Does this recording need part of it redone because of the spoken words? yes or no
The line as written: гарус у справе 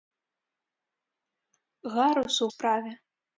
no